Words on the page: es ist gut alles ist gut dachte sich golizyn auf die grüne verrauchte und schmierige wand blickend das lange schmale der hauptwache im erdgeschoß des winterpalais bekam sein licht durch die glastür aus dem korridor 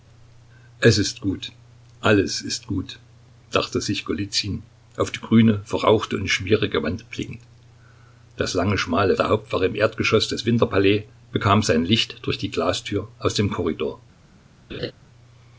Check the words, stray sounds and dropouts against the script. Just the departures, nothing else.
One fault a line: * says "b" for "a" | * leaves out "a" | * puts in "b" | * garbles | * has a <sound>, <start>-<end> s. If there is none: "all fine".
* has a laugh, 14.7-14.9 s